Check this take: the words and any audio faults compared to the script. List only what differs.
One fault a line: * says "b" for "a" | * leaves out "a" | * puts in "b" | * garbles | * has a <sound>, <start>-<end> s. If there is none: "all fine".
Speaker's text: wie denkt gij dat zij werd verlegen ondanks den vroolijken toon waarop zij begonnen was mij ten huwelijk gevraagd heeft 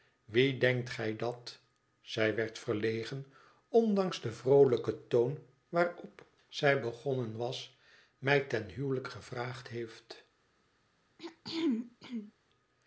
* has a throat clearing, 11.2-12.3 s